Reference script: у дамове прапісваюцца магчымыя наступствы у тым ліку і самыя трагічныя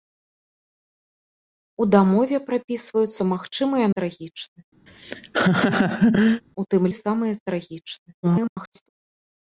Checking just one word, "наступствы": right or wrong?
wrong